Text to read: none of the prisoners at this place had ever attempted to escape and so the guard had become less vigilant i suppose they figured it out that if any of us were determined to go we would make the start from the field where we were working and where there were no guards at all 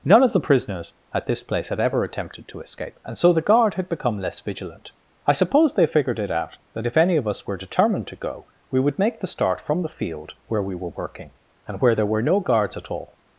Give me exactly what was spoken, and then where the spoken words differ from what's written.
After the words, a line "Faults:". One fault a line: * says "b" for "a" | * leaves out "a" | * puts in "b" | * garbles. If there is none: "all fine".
none of the prisoners at this place had ever attempted to escape and so the guard had become less vigilant i suppose they figured it out that if any of us were determined to go we would make the start from the field where we were working and where there were no guards at all
Faults:
all fine